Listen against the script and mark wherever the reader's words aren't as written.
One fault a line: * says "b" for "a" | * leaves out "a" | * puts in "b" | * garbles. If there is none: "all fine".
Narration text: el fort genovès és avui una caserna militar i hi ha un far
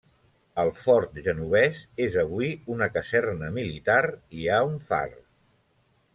all fine